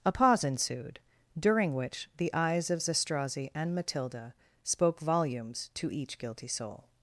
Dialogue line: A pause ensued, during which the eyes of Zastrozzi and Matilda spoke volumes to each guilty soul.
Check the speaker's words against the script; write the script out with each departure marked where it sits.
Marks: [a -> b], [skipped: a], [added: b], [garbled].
A pause ensued, during which the eyes of Zastrozzi and Matilda spoke volumes to each guilty soul.